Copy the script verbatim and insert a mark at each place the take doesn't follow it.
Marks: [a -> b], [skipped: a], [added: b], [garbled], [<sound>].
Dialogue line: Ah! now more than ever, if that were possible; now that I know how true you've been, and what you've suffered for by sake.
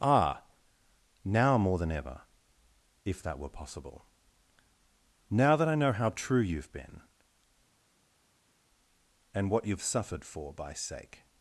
Ah! now more than ever, if that were possible; now that I know how true you've been, and what you've suffered for by sake.